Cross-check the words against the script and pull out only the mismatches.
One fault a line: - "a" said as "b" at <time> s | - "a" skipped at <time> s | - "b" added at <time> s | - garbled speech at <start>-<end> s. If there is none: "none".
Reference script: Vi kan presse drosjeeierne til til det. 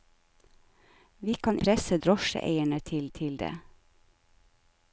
none